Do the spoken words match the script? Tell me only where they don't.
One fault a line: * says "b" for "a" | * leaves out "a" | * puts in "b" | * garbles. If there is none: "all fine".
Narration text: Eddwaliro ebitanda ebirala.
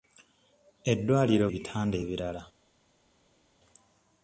all fine